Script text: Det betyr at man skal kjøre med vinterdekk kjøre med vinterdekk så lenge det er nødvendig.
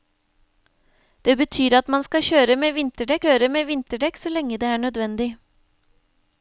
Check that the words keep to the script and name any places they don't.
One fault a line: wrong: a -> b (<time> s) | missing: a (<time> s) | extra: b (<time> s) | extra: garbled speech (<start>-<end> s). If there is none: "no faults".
no faults